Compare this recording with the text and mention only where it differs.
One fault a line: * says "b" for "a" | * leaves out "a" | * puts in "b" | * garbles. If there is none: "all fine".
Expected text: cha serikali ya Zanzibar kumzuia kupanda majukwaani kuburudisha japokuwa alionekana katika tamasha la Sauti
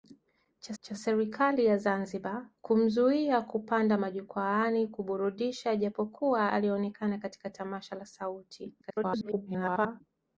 * puts in "cha"
* garbles